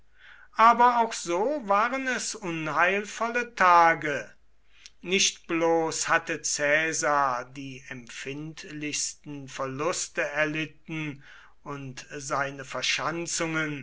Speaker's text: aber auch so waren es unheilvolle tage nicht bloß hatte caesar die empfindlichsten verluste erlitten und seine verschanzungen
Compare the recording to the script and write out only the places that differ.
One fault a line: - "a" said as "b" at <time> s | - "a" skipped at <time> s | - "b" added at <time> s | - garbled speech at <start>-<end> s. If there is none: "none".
none